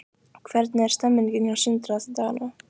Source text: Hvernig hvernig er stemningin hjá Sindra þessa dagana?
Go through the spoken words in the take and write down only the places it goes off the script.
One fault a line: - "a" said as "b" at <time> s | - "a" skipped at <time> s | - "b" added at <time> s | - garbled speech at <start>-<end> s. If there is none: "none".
- "hvernig" skipped at 0.8 s